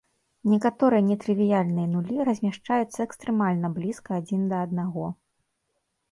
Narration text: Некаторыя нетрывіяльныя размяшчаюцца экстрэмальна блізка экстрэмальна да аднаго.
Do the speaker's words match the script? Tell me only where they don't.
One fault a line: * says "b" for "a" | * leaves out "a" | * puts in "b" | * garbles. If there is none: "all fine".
* puts in "нулі"
* says "адзін" for "экстрэмальна"